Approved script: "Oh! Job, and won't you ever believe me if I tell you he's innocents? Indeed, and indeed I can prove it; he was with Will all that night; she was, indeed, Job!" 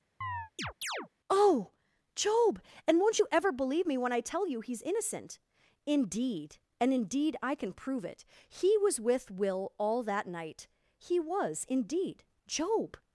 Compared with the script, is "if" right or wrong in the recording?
wrong